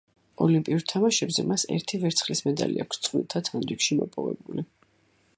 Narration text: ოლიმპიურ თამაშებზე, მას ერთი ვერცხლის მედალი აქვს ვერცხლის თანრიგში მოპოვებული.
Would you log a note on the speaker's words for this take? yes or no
yes